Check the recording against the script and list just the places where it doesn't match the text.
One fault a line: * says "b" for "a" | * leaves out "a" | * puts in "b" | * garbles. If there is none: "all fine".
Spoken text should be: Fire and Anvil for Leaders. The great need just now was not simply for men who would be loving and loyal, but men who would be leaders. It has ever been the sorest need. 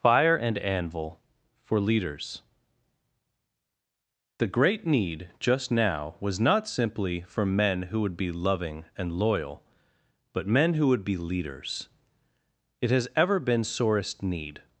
* leaves out "the"